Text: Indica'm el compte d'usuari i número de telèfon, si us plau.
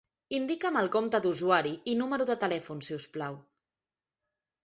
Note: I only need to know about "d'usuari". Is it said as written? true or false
true